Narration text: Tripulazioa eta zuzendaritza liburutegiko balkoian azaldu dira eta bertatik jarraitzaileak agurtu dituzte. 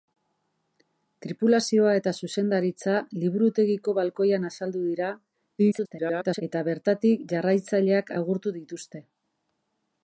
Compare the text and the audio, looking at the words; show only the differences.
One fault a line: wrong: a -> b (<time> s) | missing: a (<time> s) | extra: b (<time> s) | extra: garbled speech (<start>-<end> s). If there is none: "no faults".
extra: garbled speech (5.6-6.4 s)